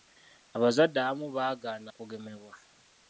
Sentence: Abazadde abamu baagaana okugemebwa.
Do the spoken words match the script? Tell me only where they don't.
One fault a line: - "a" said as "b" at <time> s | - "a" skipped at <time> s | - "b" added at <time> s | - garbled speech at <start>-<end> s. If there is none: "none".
none